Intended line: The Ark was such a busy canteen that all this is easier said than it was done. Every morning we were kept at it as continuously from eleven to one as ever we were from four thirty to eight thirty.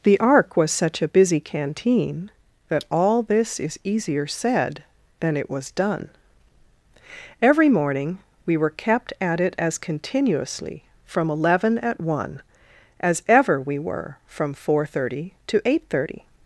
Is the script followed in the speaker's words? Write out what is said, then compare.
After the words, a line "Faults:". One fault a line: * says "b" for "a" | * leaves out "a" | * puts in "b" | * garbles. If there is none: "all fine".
The Ark was such a busy canteen that all this is easier said than it was done. Every morning we were kept at it as continuously from eleven at one as ever we were from four thirty to eight thirty.
Faults:
* says "at" for "to"